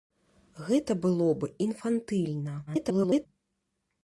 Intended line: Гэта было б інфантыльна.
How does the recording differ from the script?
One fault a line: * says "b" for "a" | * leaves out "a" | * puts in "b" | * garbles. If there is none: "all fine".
* garbles